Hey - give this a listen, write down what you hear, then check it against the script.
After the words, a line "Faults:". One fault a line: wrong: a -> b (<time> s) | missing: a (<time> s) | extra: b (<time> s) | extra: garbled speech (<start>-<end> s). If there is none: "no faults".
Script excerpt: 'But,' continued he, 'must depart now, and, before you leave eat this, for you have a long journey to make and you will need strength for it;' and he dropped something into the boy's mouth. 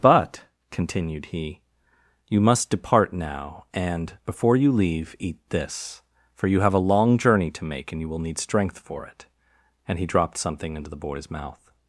'But,' continued he, 'you must depart now, and, before you leave eat this, for you have a long journey to make and you will need strength for it;' and he dropped something into the boy's mouth.
Faults:
extra: you (2.3 s)